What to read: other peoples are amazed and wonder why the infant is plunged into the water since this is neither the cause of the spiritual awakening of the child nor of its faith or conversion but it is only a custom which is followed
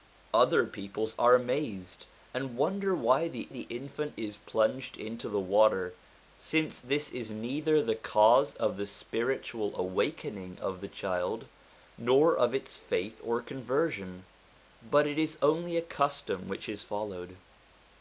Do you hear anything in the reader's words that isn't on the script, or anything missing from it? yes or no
yes